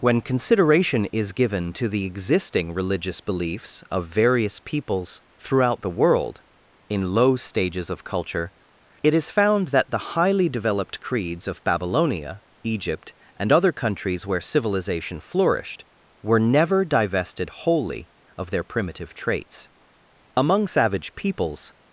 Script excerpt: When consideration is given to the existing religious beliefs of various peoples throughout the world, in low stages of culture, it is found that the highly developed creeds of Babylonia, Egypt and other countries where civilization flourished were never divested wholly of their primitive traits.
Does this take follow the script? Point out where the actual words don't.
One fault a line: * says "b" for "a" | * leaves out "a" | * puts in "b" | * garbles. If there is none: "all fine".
* puts in "Among savage peoples"